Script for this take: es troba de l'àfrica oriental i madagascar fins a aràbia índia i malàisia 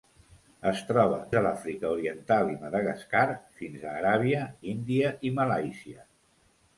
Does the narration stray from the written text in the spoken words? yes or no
no